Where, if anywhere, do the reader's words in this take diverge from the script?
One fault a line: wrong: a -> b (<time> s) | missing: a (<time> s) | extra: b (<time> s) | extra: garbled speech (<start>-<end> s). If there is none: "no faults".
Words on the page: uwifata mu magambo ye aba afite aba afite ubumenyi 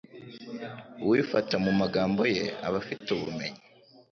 missing: aba afite (3.1 s)